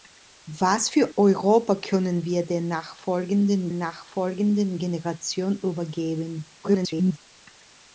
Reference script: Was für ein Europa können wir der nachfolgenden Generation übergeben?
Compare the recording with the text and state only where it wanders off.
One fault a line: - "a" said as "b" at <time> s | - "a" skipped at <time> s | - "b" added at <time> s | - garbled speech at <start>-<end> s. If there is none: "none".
- "ein" skipped at 1.1 s
- "nachfolgenden" added at 3.7 s
- garbled speech at 6.6-7.2 s